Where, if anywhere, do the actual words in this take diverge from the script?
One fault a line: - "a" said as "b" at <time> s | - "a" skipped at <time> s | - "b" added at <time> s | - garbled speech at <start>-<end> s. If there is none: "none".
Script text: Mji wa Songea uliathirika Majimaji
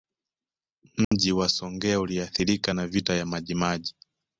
- "na Vita ya" added at 2.7 s